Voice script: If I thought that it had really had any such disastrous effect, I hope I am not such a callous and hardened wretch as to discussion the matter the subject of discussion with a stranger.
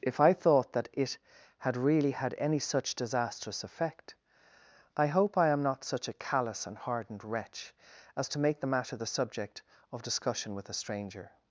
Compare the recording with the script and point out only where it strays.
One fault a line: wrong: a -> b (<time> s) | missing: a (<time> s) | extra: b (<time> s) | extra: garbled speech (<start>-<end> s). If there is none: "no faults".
wrong: discussion -> make (8.4 s)